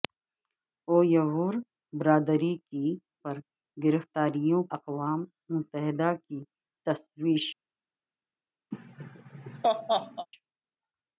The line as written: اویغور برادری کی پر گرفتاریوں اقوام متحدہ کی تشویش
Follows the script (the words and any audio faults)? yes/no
no